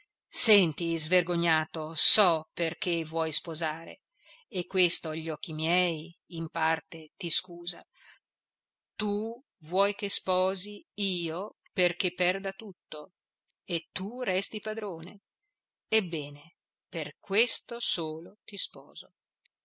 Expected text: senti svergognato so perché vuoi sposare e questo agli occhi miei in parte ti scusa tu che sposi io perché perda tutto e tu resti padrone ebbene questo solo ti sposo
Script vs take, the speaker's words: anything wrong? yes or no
yes